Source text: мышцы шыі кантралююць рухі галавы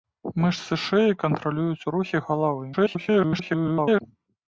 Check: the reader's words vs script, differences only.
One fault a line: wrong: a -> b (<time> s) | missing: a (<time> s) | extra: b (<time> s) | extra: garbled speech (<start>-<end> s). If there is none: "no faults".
extra: garbled speech (2.7-4.0 s)